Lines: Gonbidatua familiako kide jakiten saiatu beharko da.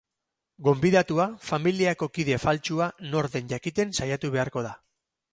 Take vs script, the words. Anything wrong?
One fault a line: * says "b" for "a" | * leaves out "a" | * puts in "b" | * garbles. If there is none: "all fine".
* puts in "faltsua nor den"